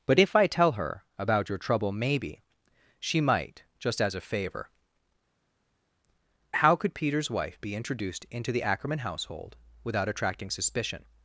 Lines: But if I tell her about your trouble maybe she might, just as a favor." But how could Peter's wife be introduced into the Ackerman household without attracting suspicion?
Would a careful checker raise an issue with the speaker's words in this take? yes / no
yes